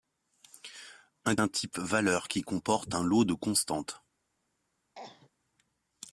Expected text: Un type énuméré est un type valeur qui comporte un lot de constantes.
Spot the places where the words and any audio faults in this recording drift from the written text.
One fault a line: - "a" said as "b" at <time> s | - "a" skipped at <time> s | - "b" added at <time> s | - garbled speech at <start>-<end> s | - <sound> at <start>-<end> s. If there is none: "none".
- "type énuméré est" skipped at 1.4 s
- cough at 5.0-5.3 s